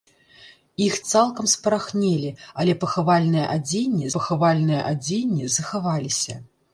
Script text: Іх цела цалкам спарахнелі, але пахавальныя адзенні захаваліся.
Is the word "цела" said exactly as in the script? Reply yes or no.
no